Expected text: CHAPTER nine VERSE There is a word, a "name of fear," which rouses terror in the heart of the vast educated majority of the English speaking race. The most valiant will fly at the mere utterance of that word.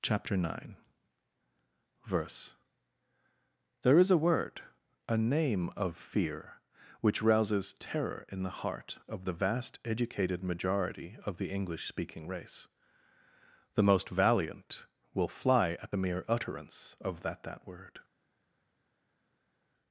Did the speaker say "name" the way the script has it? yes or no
yes